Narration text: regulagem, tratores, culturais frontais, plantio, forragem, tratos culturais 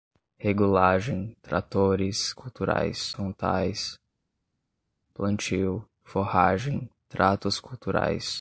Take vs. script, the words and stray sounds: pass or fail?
pass